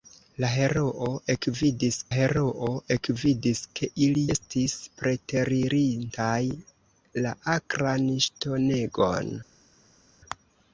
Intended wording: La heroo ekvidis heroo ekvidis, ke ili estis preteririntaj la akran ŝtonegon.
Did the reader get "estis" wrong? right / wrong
right